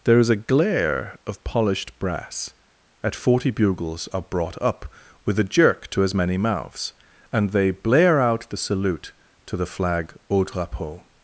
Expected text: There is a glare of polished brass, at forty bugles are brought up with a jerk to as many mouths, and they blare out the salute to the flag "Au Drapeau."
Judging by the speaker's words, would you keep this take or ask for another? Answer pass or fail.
pass